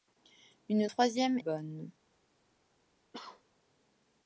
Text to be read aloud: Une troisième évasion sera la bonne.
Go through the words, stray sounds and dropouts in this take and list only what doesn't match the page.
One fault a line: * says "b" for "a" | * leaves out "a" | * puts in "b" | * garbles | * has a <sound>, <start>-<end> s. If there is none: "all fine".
* leaves out "évasion sera la"
* has a cough, 3.1-3.4 s